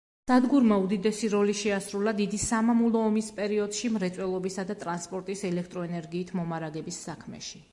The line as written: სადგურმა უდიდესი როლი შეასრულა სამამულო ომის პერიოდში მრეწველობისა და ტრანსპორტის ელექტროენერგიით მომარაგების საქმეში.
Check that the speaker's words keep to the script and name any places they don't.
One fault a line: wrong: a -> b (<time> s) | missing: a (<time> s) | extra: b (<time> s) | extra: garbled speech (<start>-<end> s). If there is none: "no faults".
extra: დიდი (2.2 s)